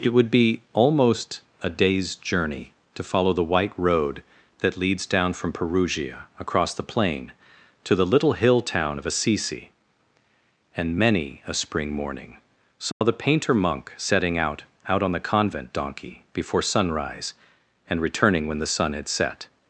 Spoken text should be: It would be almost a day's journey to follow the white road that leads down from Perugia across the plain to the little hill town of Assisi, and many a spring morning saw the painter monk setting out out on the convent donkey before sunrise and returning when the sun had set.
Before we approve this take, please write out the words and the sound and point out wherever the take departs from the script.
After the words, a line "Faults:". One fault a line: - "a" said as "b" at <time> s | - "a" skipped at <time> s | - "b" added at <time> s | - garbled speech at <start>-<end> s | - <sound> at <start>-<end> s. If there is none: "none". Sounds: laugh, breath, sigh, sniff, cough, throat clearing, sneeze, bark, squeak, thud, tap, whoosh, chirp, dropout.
It would be almost a day's journey to follow the white road that leads down from Perugia across the plain to the little hill town of Assisi, and many a spring morning saw the painter monk setting out out on the convent donkey before sunrise and returning when the sun had set.
Faults:
- dropout at 12.9-13.0 s